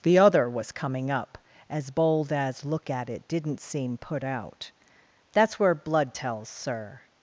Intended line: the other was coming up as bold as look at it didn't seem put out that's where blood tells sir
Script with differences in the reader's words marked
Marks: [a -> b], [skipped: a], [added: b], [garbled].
the other was coming up as bold as look at it didn't seem put out that's where blood tells sir